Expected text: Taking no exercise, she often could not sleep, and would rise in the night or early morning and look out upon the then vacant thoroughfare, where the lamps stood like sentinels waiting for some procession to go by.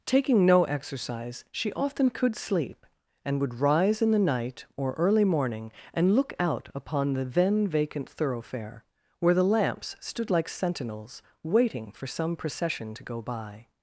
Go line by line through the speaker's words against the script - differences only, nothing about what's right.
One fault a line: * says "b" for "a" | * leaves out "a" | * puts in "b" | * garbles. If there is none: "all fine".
* leaves out "not"